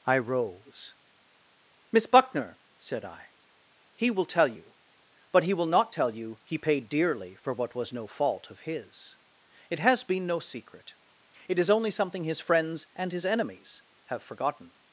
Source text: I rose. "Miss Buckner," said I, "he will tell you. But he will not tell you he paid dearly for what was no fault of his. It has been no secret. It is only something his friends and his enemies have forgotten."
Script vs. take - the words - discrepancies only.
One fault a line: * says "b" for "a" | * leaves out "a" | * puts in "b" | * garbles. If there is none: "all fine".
all fine